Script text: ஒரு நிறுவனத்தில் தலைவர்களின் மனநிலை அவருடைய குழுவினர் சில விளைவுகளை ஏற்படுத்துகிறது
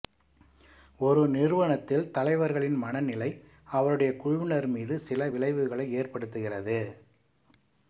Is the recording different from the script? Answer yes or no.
yes